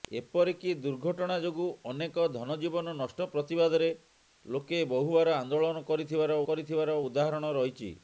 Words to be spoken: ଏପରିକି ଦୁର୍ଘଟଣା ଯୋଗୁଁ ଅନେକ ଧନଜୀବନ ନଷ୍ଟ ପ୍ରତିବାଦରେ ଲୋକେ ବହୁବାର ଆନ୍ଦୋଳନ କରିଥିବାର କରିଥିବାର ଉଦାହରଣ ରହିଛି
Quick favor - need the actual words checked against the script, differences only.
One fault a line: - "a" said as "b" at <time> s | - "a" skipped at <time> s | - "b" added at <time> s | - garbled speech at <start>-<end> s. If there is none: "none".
none